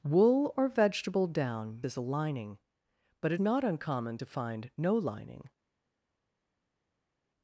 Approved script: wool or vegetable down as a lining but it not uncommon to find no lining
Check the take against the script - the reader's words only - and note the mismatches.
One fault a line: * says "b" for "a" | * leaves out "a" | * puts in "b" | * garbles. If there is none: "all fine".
all fine